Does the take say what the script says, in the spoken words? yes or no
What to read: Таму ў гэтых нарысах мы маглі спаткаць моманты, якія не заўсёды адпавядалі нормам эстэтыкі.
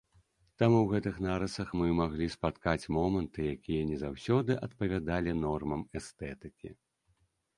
yes